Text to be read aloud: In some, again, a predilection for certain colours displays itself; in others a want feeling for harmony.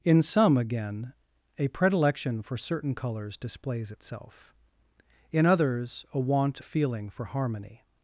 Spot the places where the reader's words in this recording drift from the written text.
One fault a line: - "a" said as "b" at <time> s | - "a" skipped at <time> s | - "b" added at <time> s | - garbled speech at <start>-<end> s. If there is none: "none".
none